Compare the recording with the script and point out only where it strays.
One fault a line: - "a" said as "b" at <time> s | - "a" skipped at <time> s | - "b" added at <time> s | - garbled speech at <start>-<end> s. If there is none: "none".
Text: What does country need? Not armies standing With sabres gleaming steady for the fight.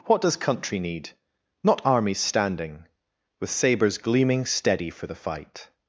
none